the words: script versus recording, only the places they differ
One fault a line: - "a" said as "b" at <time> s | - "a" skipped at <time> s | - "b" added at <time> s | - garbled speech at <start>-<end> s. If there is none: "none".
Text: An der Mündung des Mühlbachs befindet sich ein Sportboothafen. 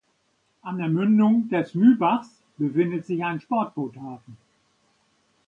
none